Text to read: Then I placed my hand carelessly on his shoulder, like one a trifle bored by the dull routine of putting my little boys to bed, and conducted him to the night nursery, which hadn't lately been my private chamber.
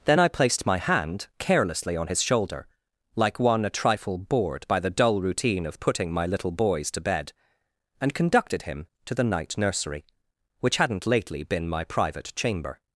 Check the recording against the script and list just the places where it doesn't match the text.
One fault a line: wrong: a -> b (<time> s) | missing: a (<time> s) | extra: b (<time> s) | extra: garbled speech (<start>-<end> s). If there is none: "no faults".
no faults